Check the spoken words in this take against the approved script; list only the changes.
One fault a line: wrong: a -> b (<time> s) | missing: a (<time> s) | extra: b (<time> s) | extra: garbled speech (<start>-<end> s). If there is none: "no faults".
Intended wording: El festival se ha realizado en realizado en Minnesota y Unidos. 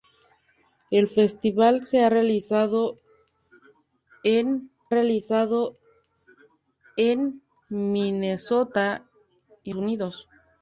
no faults